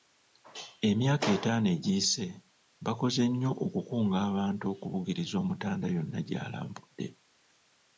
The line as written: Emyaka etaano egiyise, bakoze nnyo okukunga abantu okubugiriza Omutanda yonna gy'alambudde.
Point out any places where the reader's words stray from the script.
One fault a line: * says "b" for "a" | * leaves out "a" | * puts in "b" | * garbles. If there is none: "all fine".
all fine